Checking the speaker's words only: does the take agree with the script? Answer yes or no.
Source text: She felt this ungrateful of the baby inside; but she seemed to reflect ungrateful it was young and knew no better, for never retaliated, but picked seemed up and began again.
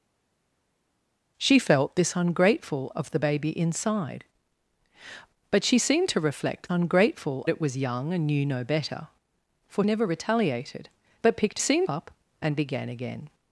yes